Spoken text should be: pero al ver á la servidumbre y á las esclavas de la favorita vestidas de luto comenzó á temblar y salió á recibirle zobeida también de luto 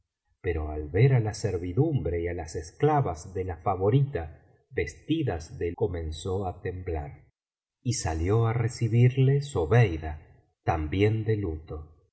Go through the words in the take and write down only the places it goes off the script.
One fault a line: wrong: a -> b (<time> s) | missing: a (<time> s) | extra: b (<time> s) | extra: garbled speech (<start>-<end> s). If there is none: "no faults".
missing: luto (5.7 s)